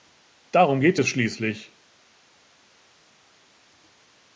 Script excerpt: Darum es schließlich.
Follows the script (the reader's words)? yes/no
no